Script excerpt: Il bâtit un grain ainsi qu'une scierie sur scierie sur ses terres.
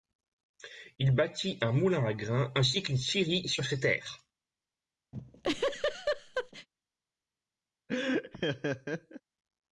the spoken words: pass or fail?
fail